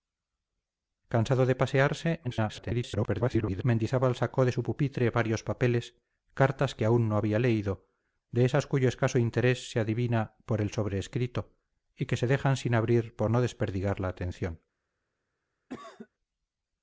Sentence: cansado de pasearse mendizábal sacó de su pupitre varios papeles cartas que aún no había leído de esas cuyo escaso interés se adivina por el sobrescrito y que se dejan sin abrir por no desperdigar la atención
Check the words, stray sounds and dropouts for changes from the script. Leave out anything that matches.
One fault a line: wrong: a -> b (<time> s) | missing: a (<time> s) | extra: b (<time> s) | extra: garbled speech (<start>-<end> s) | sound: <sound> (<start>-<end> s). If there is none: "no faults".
extra: garbled speech (2.2-3.6 s)
sound: cough (15.7-16.1 s)